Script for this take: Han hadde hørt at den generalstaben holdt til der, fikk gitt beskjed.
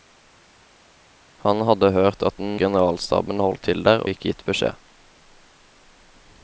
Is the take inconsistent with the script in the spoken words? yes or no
no